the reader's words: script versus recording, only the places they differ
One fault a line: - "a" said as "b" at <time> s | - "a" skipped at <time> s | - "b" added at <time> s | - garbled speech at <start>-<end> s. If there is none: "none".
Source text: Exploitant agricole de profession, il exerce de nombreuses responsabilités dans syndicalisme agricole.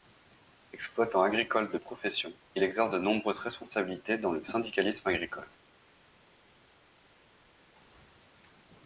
- "le" added at 4.3 s